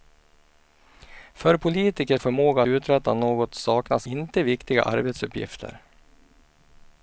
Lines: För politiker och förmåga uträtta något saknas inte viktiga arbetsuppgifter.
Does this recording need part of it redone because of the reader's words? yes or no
no